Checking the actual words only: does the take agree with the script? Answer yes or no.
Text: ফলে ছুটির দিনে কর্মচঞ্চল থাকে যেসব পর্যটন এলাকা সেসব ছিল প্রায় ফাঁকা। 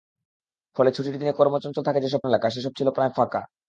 no